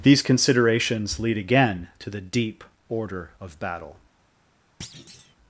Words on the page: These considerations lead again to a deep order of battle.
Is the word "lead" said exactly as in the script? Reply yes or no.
yes